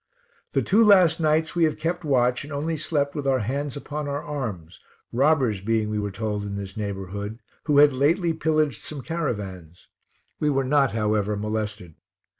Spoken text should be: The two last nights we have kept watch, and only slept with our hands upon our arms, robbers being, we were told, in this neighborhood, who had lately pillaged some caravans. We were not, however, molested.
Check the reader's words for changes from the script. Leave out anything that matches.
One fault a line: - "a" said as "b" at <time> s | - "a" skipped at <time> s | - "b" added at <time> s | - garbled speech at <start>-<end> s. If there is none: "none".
none